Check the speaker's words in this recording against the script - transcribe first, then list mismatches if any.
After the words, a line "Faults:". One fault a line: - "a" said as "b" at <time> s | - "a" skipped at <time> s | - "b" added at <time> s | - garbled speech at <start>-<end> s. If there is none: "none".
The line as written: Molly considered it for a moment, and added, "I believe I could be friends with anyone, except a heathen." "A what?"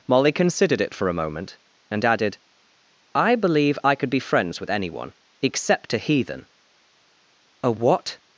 Molly considered it for a moment, and added, "I believe I could be friends with anyone, except a heathen." "A what?"
Faults:
none